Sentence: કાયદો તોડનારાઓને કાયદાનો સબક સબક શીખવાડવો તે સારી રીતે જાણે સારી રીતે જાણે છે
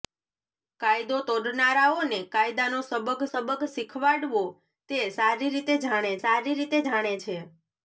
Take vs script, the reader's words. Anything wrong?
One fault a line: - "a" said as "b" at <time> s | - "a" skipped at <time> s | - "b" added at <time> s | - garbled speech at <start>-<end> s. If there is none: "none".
none